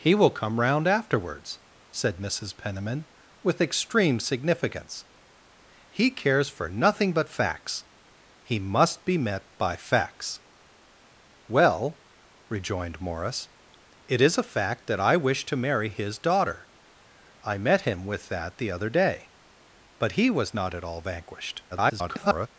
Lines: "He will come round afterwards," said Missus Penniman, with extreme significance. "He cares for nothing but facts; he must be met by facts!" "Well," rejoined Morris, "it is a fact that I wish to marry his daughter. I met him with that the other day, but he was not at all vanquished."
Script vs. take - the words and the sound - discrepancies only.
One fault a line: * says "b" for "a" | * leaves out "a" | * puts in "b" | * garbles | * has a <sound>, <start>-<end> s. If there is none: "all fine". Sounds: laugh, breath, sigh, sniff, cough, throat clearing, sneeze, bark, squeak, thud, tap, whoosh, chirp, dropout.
* garbles